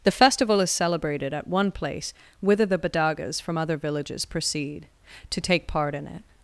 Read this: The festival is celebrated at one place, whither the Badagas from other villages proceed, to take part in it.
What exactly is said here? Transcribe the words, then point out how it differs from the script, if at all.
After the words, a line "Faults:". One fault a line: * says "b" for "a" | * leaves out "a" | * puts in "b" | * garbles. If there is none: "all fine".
The festival is celebrated at one place, whither the Badagas from other villages proceed, to take part in it.
Faults:
all fine